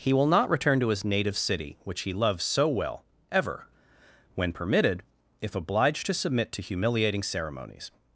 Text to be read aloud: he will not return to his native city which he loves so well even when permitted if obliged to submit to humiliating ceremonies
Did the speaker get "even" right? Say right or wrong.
wrong